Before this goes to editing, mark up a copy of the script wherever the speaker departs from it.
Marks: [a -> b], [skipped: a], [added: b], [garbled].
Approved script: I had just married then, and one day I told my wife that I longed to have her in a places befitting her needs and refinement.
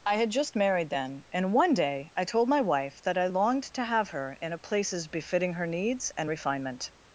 I had just married then, and one day I told my wife that I longed to have her in a places befitting her needs and refinement.